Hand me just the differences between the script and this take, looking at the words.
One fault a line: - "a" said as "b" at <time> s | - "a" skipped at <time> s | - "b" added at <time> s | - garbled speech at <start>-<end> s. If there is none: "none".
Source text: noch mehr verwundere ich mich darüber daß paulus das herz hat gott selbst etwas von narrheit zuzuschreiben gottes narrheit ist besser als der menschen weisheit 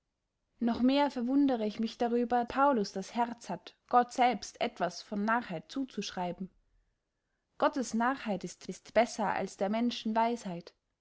- "daß" skipped at 2.5 s
- "ist" added at 8.7 s